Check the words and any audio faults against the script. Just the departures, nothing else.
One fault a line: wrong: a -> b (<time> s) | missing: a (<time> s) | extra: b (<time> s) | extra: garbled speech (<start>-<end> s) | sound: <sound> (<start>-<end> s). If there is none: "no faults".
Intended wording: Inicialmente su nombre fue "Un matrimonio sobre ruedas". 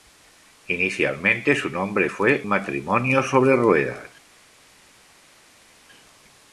missing: Un (2.4 s)